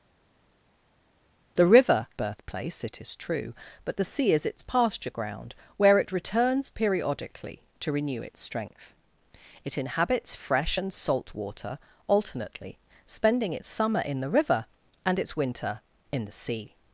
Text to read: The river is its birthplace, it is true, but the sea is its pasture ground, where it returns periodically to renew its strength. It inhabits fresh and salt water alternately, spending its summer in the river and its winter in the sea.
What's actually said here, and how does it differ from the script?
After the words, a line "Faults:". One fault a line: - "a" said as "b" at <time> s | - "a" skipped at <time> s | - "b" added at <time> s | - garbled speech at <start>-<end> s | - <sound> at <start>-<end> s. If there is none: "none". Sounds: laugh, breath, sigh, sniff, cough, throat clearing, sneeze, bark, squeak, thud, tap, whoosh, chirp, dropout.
The river birthplace, it is true, but the sea is its pasture ground, where it returns periodically to renew its strength. It inhabits fresh and salt water alternately, spending its summer in the river and its winter in the sea.
Faults:
- "is its" skipped at 2.1 s